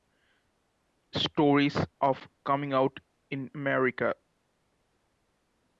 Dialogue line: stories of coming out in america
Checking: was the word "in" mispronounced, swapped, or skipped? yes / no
no